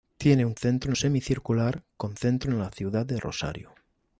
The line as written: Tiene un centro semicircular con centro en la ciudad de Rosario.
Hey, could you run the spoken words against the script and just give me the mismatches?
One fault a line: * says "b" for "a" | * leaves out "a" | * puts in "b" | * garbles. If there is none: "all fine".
all fine